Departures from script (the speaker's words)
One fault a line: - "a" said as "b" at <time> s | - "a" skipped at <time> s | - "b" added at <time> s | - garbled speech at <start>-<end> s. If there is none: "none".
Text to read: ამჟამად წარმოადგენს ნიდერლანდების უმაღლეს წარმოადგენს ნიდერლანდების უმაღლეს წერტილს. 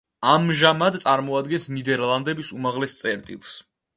- "წარმოადგენს ნიდერლანდების უმაღლეს" skipped at 3.0 s